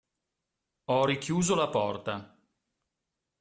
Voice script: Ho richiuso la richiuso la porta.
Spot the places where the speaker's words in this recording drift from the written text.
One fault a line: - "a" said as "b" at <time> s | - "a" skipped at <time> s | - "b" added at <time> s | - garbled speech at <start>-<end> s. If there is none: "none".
- "richiuso la" skipped at 1.7 s